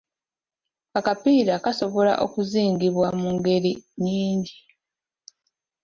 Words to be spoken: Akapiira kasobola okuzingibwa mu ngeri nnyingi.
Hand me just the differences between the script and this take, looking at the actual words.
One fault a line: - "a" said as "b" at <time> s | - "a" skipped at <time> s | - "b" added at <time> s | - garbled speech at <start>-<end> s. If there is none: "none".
none